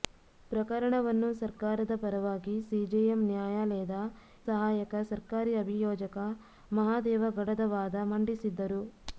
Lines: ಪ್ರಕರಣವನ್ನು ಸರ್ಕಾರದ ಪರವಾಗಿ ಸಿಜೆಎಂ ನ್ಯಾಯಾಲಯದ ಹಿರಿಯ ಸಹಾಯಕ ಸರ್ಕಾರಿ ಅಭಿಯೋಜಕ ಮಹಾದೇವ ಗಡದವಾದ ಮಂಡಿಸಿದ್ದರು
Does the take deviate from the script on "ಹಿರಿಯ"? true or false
true